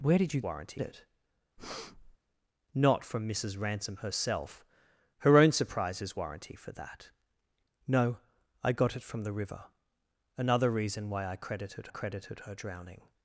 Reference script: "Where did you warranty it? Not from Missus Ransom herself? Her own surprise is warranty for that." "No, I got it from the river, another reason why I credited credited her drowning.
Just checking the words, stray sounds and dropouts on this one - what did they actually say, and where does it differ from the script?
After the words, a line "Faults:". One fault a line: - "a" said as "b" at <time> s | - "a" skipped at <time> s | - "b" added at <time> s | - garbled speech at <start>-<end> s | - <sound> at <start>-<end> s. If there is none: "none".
"Where did you warranty it? Not from Missus Ransom herself? Her own surprise is warranty for that." "No, I got it from the river, another reason why I credited credited her drowning.
Faults:
- breath at 1.6-2.2 s